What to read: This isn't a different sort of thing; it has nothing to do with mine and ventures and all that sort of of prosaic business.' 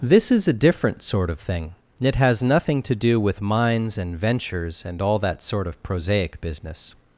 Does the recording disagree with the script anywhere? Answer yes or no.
yes